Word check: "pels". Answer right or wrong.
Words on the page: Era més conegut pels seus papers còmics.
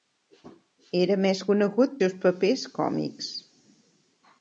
wrong